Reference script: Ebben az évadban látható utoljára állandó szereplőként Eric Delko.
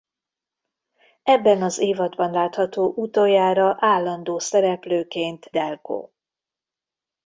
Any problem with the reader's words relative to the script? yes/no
yes